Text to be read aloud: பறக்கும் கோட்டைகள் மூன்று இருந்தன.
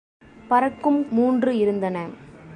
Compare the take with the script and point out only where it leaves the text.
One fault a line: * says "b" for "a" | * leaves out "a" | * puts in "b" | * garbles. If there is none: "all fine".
* leaves out "கோட்டைகள்"